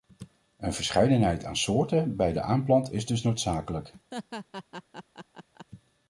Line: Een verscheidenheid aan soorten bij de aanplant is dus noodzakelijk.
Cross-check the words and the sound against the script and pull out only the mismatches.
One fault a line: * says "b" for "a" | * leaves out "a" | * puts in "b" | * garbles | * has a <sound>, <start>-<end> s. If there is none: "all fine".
* has a laugh, 4.1-5.7 s